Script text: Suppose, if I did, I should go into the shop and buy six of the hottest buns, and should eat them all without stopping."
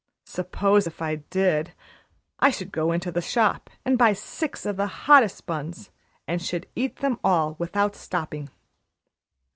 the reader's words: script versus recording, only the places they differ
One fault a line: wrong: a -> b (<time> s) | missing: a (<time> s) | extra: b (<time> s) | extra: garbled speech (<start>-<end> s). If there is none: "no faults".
no faults